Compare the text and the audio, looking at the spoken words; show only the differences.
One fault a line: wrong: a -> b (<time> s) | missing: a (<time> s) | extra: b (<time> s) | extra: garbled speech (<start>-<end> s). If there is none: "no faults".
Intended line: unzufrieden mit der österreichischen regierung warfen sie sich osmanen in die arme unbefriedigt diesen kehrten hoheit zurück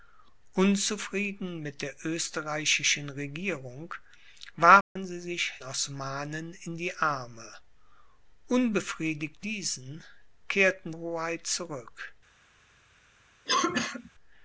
no faults